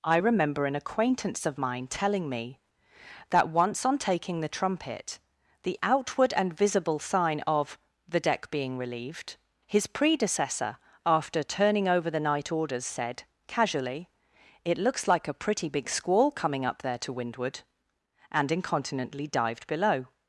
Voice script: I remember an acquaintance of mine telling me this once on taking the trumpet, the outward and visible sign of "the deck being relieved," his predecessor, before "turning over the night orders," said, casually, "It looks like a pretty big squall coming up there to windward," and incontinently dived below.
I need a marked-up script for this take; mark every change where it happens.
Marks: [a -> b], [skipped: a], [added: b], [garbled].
I remember an acquaintance of mine telling me [this -> that] once on taking the trumpet, the outward and visible sign of "the deck being relieved," his predecessor, [before -> after] "turning over the night orders," said, casually, "It looks like a pretty big squall coming up there to windward," and incontinently dived below.